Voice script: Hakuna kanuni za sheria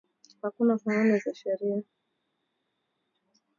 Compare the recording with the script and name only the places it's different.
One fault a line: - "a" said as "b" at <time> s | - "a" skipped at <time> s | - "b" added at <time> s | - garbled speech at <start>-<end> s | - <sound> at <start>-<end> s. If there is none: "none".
none